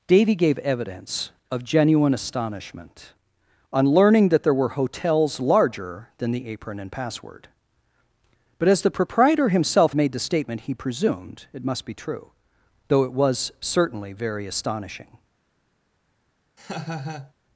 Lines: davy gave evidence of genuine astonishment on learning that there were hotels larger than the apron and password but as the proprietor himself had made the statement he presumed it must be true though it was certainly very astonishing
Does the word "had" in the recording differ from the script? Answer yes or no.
yes